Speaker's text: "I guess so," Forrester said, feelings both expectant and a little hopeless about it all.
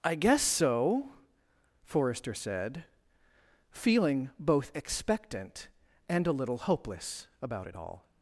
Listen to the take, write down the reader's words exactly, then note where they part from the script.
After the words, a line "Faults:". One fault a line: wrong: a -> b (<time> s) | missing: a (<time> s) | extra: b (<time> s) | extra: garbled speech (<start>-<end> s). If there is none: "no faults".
"I guess so," Forrester said, feeling both expectant and a little hopeless about it all.
Faults:
wrong: feelings -> feeling (3.7 s)